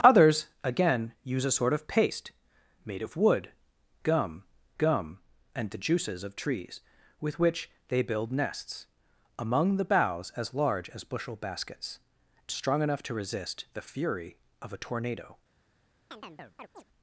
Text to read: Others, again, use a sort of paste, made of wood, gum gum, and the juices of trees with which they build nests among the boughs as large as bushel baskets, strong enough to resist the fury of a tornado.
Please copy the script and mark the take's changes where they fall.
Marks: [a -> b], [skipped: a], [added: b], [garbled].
Others, again, use a sort of paste, made of wood, gum gum, and the juices of trees with which they build nests among the boughs as large as bushel baskets, strong enough to resist the fury of a tornado.